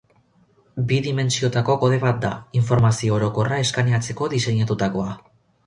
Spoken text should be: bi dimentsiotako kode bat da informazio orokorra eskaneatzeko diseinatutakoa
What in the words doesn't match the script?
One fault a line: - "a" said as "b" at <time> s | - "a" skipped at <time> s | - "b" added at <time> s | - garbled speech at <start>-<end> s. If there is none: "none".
none